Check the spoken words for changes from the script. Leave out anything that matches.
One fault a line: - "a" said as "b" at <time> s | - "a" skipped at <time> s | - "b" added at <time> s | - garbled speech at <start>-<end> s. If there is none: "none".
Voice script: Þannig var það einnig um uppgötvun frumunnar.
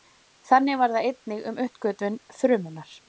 none